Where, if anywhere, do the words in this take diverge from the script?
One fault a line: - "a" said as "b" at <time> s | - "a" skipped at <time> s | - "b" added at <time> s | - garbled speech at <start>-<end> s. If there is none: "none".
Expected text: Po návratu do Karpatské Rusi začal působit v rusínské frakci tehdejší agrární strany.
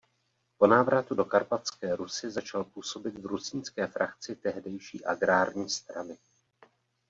none